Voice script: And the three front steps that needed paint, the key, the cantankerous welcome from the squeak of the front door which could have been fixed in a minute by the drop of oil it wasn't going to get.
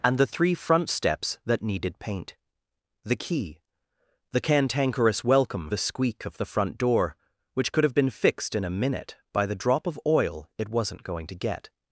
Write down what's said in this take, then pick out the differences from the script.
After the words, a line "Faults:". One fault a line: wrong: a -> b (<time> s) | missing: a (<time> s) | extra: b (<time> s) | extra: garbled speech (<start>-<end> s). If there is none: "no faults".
And the three front steps that needed paint, the key, the cantankerous welcome the squeak of the front door which could have been fixed in a minute by the drop of oil it wasn't going to get.
Faults:
missing: from (5.7 s)